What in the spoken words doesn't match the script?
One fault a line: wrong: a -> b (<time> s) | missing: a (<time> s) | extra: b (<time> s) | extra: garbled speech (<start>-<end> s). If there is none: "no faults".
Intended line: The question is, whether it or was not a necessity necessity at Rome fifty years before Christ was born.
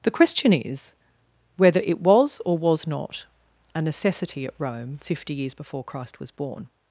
extra: was (2.0 s)
missing: necessity (4.5 s)